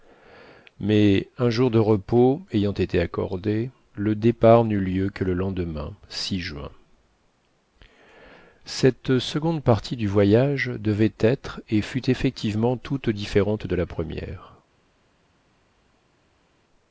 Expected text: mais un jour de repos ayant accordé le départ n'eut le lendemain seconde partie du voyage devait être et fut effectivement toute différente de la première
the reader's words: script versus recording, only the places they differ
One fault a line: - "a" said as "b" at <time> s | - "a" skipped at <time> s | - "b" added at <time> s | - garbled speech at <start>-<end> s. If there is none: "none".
- "été" added at 2.7 s
- "lieu que" added at 4.8 s
- "juin cette" added at 6.1 s